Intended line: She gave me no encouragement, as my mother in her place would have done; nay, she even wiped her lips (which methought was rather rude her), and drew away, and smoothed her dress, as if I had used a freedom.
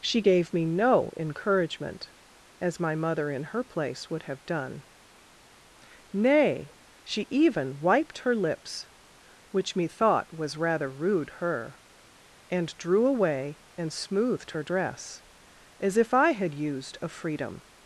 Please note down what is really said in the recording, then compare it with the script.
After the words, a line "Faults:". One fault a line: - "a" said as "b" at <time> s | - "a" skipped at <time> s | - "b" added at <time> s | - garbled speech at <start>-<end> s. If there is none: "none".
She gave me no encouragement, as my mother in her place would have done; nay, she even wiped her lips (which methought was rather rude her), and drew away, and smoothed her dress, as if I had used a freedom.
Faults:
none